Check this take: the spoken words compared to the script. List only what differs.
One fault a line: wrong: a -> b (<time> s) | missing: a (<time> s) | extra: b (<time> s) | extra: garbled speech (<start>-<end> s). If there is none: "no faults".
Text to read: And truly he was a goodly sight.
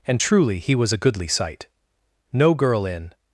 extra: No girl in (2.3 s)